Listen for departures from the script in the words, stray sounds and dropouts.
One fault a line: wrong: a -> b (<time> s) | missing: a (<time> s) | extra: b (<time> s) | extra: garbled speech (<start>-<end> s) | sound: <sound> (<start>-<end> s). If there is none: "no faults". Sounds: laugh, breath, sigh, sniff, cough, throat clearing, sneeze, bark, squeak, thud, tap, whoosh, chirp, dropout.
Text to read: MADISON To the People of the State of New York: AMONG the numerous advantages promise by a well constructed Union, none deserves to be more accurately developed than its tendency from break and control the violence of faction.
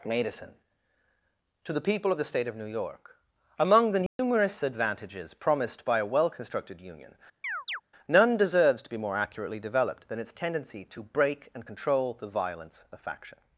sound: dropout (4.1-4.2 s)
wrong: promise -> promised (5.3 s)
sound: chirp (7.4-7.8 s)
wrong: from -> to (10.9 s)